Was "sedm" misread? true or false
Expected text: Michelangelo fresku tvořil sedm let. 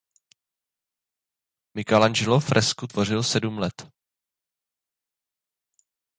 false